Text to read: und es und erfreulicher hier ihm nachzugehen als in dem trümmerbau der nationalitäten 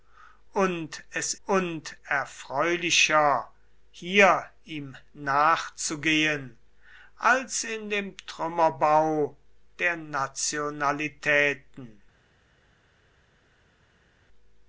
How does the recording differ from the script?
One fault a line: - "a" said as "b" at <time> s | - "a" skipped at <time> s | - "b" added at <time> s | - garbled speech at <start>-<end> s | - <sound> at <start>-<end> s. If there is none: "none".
none